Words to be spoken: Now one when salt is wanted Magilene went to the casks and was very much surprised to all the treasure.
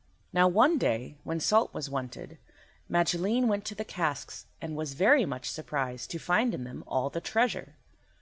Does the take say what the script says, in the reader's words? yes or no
no